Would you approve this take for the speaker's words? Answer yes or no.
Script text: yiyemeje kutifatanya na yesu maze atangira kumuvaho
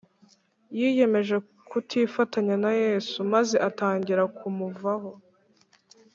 yes